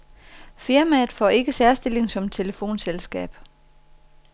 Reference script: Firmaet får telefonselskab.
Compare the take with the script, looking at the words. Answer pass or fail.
fail